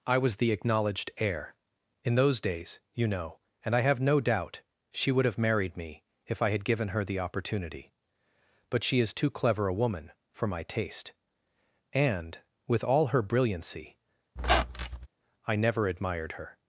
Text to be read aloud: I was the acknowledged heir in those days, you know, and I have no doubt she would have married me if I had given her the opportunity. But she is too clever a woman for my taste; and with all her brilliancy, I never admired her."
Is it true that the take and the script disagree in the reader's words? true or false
false